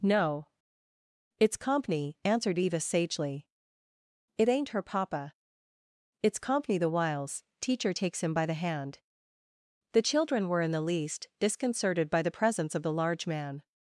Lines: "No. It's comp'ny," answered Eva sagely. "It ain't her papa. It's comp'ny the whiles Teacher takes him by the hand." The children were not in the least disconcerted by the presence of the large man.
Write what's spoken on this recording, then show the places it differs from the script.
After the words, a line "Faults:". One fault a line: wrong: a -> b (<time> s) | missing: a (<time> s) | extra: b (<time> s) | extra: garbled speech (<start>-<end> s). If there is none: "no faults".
"No. It's comp'ny," answered Eva sagely. "It ain't her papa. It's comp'ny the whiles Teacher takes him by the hand." The children were in the least disconcerted by the presence of the large man.
Faults:
missing: not (10.6 s)